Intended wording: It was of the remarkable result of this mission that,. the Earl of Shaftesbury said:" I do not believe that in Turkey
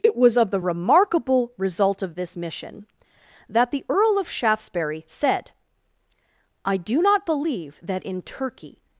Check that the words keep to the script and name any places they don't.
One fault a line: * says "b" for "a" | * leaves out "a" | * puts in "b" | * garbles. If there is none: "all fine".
all fine